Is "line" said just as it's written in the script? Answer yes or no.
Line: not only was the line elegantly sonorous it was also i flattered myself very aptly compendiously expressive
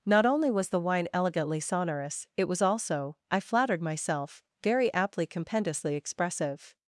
no